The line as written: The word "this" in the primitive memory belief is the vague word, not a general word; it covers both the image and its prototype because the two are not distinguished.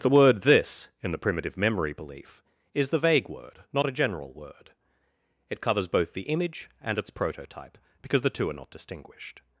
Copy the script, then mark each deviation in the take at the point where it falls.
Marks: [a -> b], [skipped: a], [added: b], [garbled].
The word "this" in the primitive memory belief is the vague word, not a general word; it covers both the image and its prototype because the two are not distinguished.